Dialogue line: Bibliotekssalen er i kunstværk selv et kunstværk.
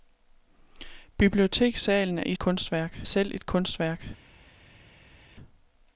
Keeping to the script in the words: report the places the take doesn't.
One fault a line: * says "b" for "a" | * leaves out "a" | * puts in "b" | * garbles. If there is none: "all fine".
all fine